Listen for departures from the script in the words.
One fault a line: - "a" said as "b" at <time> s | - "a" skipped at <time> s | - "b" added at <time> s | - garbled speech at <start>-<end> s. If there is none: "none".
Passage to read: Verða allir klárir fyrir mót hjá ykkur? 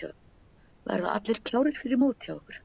none